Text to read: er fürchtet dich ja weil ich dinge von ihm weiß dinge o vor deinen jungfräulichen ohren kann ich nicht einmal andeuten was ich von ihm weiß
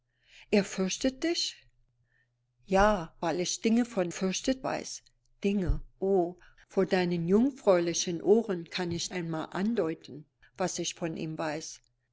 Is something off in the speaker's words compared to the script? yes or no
yes